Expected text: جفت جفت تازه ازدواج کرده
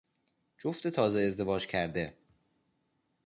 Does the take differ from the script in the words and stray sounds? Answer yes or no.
yes